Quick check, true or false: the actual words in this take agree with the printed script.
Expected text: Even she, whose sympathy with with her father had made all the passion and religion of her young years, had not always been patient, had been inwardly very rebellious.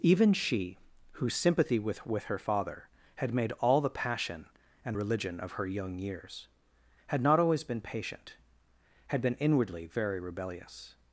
true